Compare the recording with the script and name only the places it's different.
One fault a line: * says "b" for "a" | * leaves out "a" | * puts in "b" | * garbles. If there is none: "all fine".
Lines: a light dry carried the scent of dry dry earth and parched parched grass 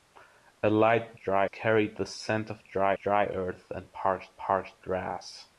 all fine